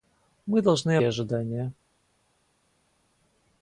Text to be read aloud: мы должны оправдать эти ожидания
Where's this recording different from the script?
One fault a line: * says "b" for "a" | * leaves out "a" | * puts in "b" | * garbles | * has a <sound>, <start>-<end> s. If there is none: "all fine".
* leaves out "оправдать эти"